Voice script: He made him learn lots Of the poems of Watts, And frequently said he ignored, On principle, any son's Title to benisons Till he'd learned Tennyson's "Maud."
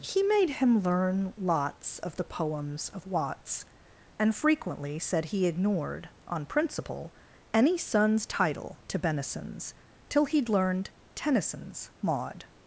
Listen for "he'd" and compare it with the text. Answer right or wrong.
right